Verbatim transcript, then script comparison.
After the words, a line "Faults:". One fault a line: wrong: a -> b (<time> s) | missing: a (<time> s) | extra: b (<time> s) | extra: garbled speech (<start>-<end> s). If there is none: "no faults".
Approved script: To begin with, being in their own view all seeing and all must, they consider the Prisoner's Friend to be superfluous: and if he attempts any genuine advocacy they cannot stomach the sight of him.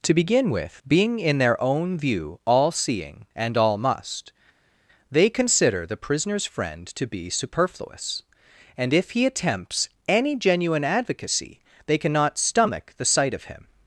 To begin with, being in their own view all seeing and all must, they consider the Prisoner's Friend to be superfluous: and if he attempts any genuine advocacy they cannot stomach the sight of him.
Faults:
no faults